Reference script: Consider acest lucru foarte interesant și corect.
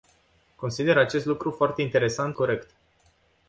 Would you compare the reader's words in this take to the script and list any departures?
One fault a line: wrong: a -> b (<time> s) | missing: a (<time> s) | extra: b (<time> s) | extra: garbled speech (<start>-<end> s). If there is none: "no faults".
missing: și (2.4 s)